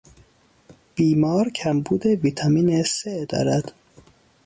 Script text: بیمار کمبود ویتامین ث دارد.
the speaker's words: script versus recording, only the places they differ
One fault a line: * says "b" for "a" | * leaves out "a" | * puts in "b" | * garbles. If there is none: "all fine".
all fine